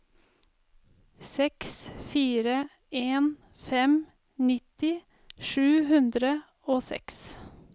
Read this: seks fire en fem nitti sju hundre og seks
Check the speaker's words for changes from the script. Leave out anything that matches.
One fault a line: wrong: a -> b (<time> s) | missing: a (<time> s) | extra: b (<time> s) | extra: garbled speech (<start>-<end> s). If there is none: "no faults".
no faults